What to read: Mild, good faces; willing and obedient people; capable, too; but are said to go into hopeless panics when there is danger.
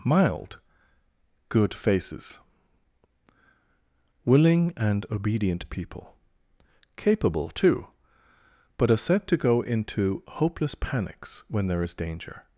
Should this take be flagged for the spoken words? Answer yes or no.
no